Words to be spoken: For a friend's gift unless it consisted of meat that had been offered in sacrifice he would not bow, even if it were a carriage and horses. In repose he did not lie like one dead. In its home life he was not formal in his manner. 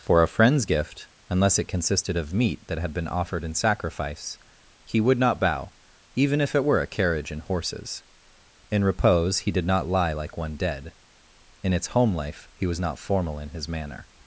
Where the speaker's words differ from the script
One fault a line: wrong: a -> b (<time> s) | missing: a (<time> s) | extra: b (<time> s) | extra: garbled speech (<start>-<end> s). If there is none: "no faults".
no faults